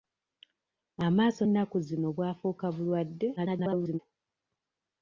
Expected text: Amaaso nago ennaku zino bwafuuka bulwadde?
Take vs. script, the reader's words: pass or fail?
fail